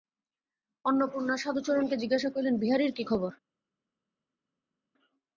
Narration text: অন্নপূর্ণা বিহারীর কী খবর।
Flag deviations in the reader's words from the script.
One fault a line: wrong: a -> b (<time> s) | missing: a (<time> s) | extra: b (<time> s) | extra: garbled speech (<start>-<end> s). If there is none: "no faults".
extra: সাধুচরণকে জিজ্ঞাসা করিলেন (1.4 s)